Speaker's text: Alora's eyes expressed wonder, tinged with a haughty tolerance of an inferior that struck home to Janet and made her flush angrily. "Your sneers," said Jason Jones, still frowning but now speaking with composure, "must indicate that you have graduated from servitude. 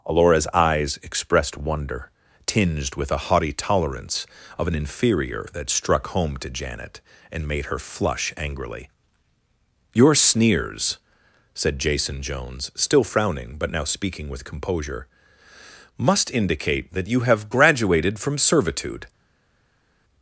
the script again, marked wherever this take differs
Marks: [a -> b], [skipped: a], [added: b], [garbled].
Alora's eyes expressed wonder, tinged with a haughty tolerance of an inferior that struck home to Janet and made her flush angrily. "Your sneers," said Jason Jones, still frowning but now speaking with composure, "must indicate that you have graduated from servitude.